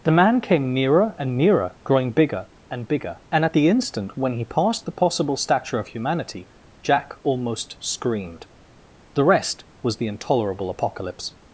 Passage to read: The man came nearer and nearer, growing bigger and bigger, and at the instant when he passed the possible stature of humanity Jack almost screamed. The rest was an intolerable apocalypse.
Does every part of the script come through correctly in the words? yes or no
no